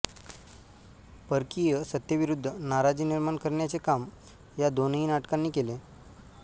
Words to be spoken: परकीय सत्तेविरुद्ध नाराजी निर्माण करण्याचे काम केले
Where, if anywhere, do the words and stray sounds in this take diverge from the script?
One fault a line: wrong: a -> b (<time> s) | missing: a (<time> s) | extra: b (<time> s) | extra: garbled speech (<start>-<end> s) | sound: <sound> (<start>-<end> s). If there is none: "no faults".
extra: या दोनही नाटकांनी (4.6 s)